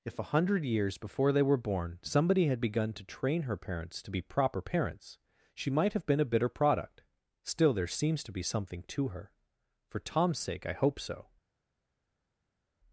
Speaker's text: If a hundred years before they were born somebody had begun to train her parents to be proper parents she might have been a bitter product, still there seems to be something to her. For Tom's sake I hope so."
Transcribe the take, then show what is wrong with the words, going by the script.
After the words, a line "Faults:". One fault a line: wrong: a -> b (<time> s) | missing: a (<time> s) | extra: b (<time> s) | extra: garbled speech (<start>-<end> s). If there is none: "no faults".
If a hundred years before they were born somebody had begun to train her parents to be proper parents she might have been a bitter product, still there seems to be something to her. For Tom's sake I hope so."
Faults:
no faults